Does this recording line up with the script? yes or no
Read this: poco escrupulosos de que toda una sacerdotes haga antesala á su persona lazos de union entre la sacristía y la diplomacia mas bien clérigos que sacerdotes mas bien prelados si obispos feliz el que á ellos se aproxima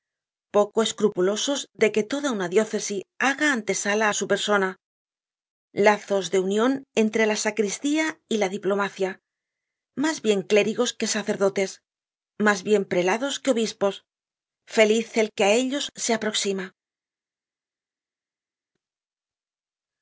no